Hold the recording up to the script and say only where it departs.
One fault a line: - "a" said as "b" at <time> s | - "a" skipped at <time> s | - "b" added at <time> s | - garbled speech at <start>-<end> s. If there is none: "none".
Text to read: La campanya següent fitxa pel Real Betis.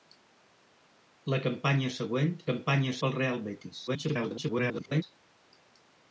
- "fitxa" said as "campanya" at 2.5 s
- garbled speech at 3.9-5.0 s